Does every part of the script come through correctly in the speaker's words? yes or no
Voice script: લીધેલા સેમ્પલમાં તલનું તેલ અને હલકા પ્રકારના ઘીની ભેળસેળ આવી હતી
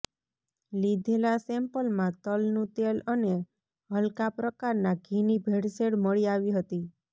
no